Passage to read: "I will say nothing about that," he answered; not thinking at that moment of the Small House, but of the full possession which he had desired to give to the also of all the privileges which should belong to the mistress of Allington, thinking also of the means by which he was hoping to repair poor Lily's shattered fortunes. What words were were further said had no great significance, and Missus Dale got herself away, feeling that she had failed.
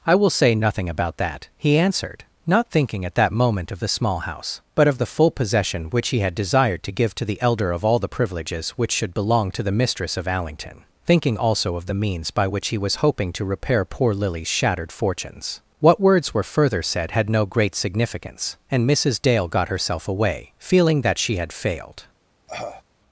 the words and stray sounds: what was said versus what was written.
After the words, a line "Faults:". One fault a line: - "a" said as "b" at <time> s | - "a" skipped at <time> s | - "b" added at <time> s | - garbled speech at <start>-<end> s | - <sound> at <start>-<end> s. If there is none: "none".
"I will say nothing about that," he answered; not thinking at that moment of the Small House, but of the full possession which he had desired to give to the elder of all the privileges which should belong to the mistress of Allington, thinking also of the means by which he was hoping to repair poor Lily's shattered fortunes. What words were further said had no great significance, and Missus Dale got herself away, feeling that she had failed.
Faults:
- "also" said as "elder" at 7.4 s
- "were" skipped at 16.4 s
- cough at 22.5-22.8 s